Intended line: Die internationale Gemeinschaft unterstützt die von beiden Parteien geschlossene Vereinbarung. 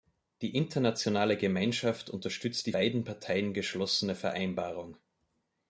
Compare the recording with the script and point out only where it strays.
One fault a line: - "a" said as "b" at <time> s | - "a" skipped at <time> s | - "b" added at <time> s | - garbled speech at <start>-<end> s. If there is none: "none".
- "von" skipped at 2.7 s